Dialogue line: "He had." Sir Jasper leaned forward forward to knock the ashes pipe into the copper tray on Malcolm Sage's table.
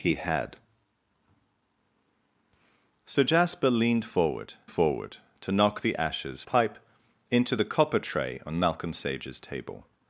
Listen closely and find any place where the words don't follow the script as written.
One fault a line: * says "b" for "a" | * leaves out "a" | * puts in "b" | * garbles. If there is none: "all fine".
all fine